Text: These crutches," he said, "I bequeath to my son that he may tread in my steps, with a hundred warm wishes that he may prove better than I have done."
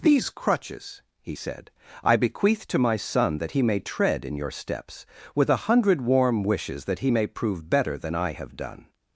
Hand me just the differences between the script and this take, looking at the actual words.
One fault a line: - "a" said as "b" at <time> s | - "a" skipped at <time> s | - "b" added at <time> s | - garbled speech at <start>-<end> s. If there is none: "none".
- "my" said as "your" at 4.4 s